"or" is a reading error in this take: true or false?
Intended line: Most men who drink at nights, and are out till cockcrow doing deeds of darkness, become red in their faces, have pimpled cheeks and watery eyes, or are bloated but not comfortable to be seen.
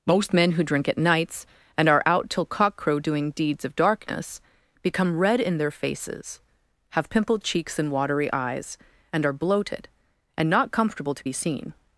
true